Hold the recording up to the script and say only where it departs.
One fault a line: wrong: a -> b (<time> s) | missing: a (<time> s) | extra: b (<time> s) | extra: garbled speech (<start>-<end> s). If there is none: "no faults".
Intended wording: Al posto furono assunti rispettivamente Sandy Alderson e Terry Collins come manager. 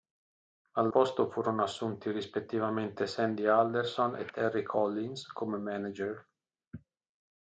no faults